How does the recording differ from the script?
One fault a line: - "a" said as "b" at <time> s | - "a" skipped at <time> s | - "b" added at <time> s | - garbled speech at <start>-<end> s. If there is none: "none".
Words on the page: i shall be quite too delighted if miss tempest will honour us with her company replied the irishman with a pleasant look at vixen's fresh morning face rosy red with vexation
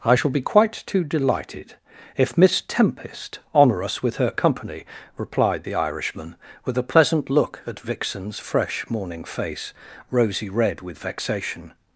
- "will" skipped at 3.4 s